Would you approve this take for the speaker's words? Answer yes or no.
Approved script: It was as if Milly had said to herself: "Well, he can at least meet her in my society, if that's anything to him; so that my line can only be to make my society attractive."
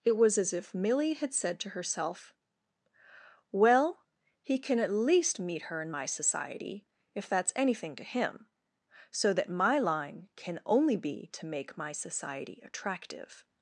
yes